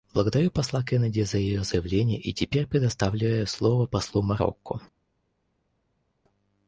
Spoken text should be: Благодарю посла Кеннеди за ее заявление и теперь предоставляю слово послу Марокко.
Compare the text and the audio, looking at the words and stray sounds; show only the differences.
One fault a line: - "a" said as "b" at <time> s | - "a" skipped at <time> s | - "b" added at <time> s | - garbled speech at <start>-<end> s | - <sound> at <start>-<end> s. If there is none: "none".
none